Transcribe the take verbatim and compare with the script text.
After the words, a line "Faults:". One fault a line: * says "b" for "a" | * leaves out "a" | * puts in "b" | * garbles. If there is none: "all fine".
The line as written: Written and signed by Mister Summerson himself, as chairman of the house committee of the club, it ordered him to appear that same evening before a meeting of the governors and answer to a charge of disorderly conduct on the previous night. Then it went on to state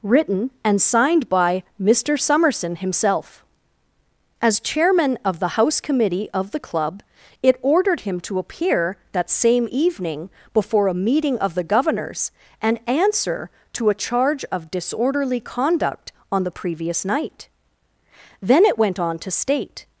Written and signed by Mister Summerson himself, as chairman of the house committee of the club, it ordered him to appear that same evening before a meeting of the governors and answer to a charge of disorderly conduct on the previous night. Then it went on to state
Faults:
all fine